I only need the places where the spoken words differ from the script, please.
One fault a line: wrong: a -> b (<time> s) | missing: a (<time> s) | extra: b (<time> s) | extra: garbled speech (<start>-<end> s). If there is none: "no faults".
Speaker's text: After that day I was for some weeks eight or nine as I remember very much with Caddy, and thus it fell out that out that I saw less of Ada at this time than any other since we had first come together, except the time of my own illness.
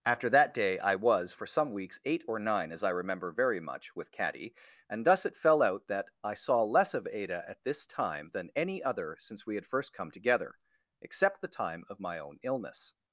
missing: out that (6.1 s)